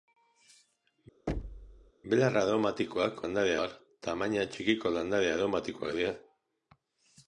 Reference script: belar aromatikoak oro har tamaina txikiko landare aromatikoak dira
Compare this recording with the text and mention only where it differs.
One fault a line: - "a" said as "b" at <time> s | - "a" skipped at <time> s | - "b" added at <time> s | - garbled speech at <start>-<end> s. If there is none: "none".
- "oro" said as "landare" at 3.2 s